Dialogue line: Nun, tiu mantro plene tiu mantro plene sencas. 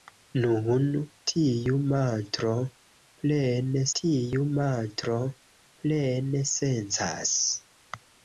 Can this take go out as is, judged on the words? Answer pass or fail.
pass